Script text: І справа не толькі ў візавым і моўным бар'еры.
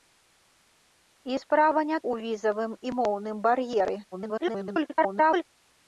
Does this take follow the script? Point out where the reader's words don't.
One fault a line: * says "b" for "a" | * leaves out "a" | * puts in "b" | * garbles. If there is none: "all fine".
* leaves out "толькі"
* garbles